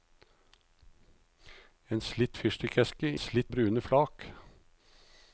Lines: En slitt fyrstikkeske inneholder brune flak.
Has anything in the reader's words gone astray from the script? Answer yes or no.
yes